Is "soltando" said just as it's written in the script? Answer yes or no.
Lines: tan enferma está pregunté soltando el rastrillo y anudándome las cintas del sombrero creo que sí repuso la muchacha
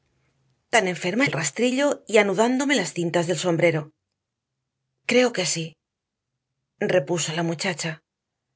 no